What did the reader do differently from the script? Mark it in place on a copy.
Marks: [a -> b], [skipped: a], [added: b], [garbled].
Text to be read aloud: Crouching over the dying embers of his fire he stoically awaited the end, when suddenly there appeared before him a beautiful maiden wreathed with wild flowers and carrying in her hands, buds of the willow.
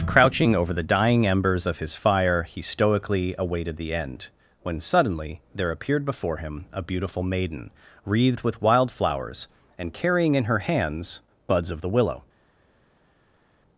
Crouching over the dying embers of his fire he stoically awaited the end, when suddenly there appeared before him a beautiful maiden wreathed with wild flowers and carrying in her hands, buds of the willow.